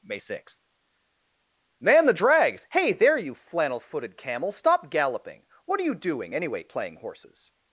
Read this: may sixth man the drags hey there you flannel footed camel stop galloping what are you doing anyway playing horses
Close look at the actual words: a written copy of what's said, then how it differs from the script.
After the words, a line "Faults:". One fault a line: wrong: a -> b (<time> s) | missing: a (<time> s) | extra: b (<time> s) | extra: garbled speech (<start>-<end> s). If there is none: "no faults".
may sixth man the drags hey there you flannel footed camel stop galloping what are you doing anyway playing horses
Faults:
no faults